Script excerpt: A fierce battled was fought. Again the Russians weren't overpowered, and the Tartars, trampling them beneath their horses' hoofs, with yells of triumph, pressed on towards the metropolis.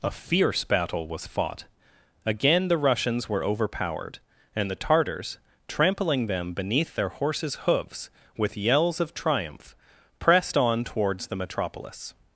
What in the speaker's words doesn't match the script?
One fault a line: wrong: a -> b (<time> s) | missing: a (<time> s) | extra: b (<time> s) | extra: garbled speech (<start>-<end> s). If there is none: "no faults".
wrong: battled -> battle (0.6 s)
wrong: weren't -> were (3.3 s)